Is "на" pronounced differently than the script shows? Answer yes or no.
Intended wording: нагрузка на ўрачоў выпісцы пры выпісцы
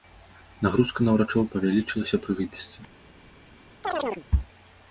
no